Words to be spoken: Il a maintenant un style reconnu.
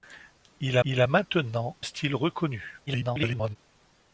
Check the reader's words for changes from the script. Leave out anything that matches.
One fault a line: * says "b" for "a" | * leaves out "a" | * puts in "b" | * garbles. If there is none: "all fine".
* puts in "il"
* leaves out "un"
* garbles